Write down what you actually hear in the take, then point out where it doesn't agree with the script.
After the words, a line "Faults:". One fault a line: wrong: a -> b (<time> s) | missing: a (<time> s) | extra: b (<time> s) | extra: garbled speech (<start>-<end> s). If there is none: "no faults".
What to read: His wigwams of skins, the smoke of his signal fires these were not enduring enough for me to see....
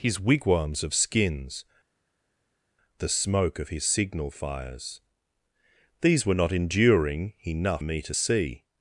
His wigwams of skins, the smoke of his signal fires these were not enduring enough me to see....
Faults:
missing: for (7.8 s)